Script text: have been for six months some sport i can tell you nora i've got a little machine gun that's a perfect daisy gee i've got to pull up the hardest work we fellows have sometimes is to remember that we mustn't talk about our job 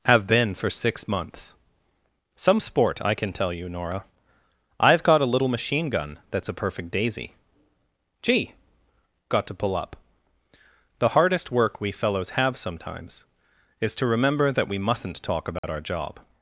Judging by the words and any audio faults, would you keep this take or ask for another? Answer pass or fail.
fail